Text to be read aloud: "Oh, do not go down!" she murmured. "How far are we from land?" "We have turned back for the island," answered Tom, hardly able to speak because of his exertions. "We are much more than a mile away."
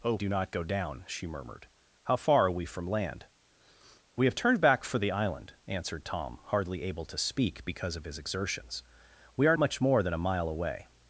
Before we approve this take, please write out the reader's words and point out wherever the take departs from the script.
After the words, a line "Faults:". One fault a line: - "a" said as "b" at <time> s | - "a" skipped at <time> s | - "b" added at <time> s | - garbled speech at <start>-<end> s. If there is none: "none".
"Oh, do not go down!" she murmured. "How far are we from land?" "We have turned back for the island," answered Tom, hardly able to speak because of his exertions. "We are much more than a mile away."
Faults:
none